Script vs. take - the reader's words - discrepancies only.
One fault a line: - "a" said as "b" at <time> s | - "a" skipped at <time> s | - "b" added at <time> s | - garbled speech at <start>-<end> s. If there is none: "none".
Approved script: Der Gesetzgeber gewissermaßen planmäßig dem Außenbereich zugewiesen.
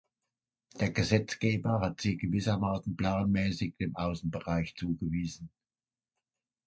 - "hat sie" added at 1.8 s